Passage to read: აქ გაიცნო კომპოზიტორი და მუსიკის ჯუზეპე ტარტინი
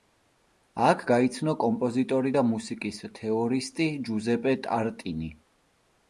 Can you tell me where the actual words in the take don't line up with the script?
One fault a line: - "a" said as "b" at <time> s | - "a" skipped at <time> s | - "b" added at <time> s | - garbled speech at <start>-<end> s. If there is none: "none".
- "თეორისტი" added at 3.2 s